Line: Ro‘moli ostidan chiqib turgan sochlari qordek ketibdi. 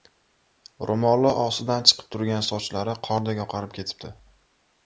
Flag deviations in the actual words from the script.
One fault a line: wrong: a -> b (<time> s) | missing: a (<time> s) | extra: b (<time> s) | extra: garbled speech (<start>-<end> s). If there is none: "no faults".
extra: oqarib (3.5 s)